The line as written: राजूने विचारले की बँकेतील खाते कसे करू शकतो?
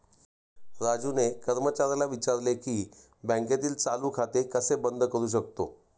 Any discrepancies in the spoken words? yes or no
yes